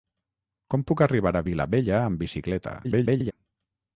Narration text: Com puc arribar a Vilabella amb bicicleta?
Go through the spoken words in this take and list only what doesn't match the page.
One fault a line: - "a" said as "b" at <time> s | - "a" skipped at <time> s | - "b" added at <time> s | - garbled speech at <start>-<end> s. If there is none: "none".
- garbled speech at 2.8-3.3 s